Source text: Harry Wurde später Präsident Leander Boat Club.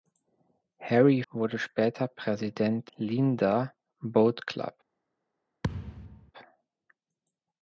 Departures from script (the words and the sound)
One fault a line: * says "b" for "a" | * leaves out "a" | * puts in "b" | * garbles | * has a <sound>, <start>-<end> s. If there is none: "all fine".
* has a thud, 5.6-6.3 s